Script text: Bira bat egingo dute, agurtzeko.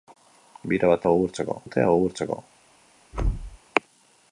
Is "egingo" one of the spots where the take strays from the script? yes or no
yes